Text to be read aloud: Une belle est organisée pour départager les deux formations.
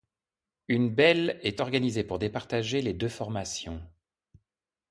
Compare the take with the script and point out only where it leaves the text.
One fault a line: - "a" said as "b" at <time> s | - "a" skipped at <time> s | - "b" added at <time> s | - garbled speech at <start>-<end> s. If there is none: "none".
none